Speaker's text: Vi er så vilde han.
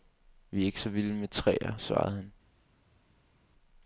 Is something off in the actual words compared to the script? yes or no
yes